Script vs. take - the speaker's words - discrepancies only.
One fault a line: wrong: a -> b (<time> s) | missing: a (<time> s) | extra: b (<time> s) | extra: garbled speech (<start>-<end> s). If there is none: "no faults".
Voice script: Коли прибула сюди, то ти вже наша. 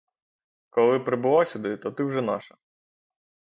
no faults